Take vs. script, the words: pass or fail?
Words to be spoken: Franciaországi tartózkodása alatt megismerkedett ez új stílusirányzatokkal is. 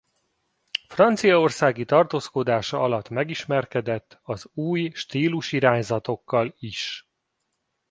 fail